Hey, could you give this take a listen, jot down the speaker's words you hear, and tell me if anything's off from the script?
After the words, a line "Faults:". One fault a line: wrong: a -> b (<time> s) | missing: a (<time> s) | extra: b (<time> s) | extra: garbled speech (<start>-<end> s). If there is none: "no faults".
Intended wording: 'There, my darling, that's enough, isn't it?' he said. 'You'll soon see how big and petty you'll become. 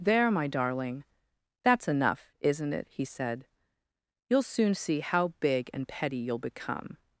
'There, my darling, that's enough, isn't it?' he said. 'You'll soon see how big and petty you'll become.
Faults:
no faults